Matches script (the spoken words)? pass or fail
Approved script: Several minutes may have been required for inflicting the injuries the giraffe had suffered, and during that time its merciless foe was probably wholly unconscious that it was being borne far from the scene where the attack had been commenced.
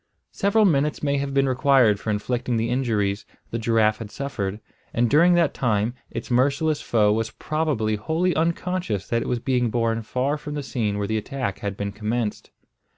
pass